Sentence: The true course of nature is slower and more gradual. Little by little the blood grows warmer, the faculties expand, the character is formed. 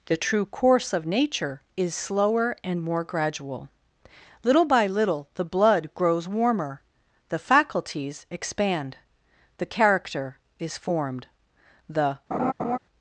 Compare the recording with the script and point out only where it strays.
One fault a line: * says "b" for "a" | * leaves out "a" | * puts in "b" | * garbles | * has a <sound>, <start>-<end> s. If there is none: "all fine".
* puts in "The"
* has a laugh, 12.3-12.8 s